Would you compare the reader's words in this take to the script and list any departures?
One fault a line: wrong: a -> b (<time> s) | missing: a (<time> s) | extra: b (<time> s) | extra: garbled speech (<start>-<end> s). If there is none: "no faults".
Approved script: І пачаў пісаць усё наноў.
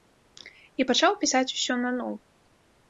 no faults